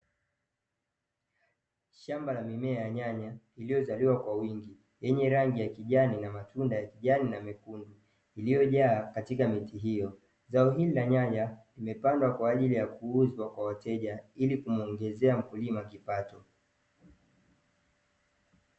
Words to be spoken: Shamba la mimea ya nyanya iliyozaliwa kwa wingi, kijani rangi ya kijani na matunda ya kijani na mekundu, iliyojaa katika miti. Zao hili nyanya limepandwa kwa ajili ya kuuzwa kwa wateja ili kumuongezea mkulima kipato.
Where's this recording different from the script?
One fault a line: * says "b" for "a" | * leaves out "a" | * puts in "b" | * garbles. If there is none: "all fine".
* says "yenye" for "kijani"
* puts in "hiyo"
* puts in "la"